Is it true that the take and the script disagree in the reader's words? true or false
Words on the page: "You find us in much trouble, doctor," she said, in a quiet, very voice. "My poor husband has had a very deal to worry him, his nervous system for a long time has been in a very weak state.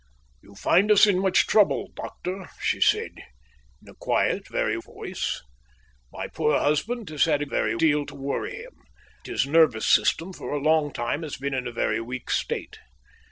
false